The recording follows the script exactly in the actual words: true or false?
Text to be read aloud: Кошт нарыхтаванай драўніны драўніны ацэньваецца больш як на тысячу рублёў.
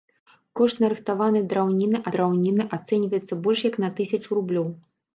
true